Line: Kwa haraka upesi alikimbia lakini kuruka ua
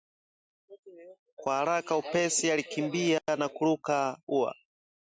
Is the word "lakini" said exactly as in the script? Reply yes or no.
no